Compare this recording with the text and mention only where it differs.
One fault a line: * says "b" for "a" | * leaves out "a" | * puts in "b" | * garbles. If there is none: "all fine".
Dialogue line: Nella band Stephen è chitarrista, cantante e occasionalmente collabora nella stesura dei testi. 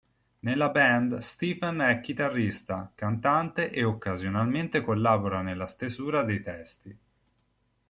all fine